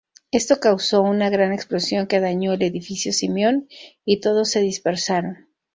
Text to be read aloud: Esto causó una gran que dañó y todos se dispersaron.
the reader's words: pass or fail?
fail